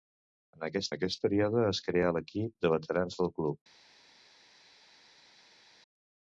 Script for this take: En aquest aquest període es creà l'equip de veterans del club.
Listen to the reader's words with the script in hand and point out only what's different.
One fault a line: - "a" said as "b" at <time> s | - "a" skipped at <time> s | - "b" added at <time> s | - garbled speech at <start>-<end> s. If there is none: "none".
none